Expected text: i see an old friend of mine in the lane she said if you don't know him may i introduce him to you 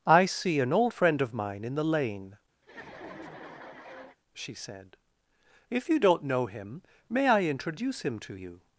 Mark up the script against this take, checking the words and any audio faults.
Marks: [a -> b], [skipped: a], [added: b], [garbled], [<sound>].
i see an old friend of mine in the lane [laugh] she said if you don't know him may i introduce him to you